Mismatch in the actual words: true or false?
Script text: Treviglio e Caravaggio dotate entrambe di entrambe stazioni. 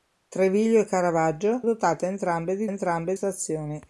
false